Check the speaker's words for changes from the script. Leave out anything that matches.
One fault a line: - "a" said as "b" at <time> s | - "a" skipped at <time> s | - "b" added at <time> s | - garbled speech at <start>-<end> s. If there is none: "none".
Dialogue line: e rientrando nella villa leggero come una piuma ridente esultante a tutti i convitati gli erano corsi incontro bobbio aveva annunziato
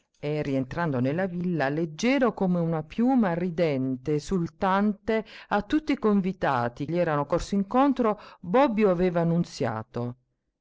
none